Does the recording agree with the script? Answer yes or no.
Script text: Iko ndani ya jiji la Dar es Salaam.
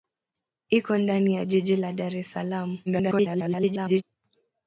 no